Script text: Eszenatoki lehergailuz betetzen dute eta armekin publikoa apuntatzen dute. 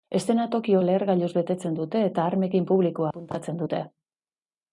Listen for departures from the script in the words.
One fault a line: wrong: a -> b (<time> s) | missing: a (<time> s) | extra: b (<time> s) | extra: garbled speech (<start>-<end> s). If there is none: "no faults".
no faults